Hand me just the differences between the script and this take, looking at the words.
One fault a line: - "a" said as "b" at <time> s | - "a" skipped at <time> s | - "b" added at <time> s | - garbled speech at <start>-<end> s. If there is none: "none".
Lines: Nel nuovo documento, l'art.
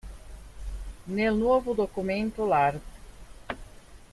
none